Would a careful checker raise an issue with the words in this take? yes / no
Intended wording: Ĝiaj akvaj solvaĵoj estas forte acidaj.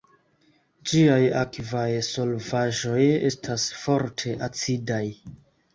no